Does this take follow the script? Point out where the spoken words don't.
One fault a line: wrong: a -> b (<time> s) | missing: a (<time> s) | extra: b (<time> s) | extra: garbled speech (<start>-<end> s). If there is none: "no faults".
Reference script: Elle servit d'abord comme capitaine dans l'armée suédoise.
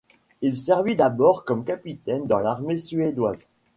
wrong: Elle -> Il (0.4 s)